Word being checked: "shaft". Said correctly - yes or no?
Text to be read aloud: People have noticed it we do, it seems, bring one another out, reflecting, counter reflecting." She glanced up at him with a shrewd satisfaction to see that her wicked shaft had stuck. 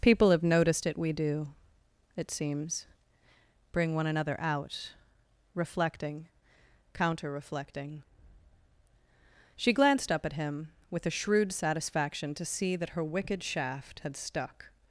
yes